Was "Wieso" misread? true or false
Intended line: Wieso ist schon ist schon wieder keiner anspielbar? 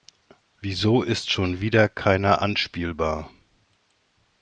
false